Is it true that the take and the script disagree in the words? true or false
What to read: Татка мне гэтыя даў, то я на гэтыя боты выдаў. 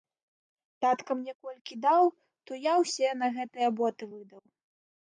true